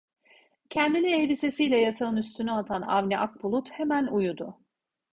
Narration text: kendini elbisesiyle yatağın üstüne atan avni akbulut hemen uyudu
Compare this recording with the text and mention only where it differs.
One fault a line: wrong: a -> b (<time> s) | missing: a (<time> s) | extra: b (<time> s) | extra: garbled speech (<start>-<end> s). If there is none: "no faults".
no faults